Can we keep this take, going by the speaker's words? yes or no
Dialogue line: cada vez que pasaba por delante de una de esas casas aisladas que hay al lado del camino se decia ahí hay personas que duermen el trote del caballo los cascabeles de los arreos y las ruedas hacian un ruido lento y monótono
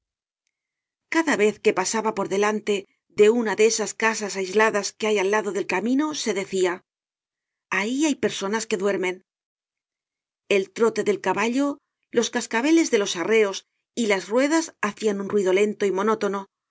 yes